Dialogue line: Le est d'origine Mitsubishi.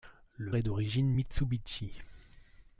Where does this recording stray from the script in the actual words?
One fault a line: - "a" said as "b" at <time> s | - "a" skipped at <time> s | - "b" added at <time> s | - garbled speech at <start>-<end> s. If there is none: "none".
none